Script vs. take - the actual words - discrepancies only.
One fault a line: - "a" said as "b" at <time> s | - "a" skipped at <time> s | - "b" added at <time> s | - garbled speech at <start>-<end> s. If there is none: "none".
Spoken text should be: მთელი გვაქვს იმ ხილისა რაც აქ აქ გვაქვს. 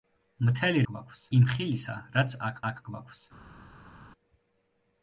none